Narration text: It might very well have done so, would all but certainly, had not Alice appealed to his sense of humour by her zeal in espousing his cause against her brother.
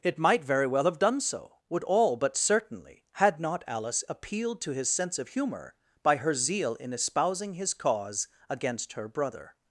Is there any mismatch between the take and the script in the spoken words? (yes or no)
no